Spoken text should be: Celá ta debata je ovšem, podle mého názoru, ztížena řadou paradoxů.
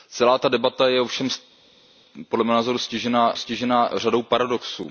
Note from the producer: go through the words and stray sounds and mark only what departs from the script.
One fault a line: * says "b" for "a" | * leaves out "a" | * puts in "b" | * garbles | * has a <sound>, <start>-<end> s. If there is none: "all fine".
* puts in "ztížena"